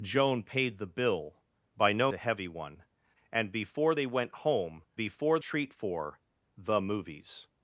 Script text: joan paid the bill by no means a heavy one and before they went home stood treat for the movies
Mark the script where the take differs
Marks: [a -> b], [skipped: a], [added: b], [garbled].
joan paid the bill by no [skipped: means] a heavy one and before they went home [stood -> before] treat for the movies